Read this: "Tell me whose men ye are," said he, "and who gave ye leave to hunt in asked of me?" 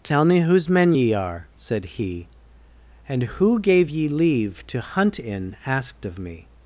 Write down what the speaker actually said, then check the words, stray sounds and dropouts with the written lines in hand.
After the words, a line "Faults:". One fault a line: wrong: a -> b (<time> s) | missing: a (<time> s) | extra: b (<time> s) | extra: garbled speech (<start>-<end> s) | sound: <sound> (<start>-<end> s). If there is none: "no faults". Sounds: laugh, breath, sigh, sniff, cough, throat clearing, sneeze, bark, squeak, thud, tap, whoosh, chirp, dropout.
"Tell me whose men ye are," said he, "and who gave ye leave to hunt in asked of me?"
Faults:
no faults